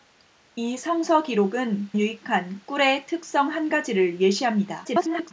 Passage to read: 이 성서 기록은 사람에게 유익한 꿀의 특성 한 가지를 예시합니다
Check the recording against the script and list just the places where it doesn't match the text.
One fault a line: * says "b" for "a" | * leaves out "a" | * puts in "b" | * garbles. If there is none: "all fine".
* leaves out "사람에게"
* garbles